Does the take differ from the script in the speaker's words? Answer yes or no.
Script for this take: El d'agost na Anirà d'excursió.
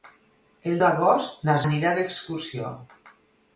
no